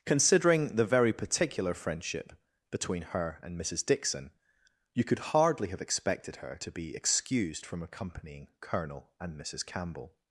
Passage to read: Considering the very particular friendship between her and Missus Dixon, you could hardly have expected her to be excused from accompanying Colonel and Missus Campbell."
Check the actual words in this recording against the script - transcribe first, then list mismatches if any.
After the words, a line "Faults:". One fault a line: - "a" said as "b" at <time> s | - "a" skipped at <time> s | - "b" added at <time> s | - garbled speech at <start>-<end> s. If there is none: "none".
Considering the very particular friendship between her and Missus Dixon, you could hardly have expected her to be excused from accompanying Colonel and Missus Campbell."
Faults:
none